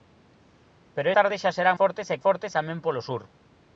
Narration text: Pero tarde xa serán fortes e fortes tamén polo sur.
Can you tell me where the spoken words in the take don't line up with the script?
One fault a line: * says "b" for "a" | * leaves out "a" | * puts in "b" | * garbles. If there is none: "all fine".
all fine